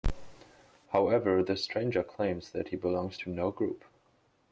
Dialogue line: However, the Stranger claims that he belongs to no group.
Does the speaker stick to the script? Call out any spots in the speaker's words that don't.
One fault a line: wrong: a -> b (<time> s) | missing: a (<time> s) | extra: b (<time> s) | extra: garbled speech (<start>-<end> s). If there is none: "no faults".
no faults